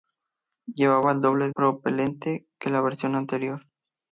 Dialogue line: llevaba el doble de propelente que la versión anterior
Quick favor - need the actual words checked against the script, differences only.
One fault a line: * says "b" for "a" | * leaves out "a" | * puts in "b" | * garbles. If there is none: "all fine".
* leaves out "de"